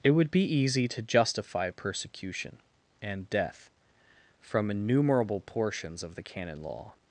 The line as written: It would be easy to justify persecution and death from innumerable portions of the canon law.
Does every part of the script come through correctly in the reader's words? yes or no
yes